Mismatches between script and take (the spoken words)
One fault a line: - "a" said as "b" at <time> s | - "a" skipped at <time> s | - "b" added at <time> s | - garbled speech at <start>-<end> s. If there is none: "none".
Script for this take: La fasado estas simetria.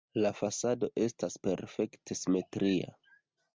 - "perfekte" added at 1.5 s